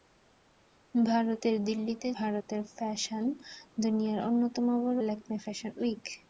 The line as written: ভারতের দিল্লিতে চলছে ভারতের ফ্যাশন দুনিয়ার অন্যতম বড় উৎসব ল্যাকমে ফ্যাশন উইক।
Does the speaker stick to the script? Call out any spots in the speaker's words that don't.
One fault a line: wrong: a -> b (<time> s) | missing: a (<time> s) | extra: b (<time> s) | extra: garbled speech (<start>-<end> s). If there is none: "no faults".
missing: চলছে (2.1 s)
missing: উৎসব (5.0 s)